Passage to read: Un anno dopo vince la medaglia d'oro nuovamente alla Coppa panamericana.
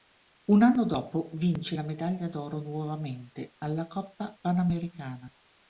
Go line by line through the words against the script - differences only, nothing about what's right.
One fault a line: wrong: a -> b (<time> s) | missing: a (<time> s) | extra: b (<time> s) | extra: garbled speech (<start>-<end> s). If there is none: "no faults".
no faults